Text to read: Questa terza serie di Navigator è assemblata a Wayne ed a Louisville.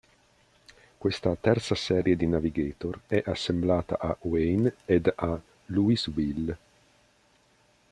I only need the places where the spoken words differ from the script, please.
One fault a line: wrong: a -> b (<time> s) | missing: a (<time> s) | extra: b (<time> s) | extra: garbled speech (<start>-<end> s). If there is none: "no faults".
no faults